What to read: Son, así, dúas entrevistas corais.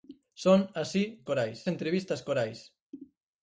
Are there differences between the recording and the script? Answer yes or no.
yes